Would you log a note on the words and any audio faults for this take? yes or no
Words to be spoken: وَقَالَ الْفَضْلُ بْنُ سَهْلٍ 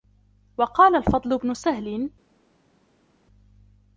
no